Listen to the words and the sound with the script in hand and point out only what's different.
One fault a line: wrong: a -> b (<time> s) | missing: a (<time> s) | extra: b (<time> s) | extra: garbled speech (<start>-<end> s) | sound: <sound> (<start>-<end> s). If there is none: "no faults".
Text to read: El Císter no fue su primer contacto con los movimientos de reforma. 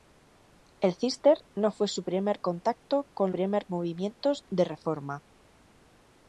wrong: los -> primer (3.3 s)